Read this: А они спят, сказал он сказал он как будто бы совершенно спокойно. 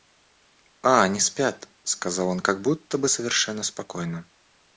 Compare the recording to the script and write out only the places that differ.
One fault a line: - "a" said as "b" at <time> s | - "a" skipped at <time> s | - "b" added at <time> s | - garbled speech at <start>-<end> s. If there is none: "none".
- "сказал он" skipped at 2.4 s